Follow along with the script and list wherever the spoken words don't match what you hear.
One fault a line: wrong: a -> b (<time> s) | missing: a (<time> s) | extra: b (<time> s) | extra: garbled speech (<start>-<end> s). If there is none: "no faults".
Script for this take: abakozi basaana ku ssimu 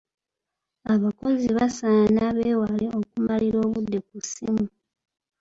extra: beewale okumalira obudde (2.4 s)